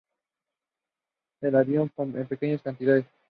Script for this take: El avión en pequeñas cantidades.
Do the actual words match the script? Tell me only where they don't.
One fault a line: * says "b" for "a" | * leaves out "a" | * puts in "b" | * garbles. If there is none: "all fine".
all fine